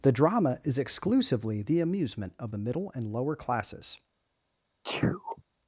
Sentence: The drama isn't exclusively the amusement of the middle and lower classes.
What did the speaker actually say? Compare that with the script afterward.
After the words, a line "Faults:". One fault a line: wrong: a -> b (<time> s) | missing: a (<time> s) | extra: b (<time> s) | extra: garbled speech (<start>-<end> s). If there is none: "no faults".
The drama is exclusively the amusement of the middle and lower classes.
Faults:
wrong: isn't -> is (0.6 s)